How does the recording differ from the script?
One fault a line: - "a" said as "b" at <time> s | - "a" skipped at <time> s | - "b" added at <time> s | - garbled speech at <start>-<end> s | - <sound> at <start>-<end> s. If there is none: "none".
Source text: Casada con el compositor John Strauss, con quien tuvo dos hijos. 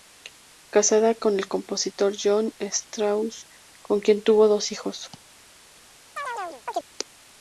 - chirp at 6.2-6.9 s